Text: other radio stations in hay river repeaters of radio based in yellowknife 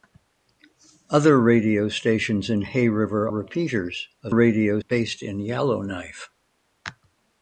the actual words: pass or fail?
pass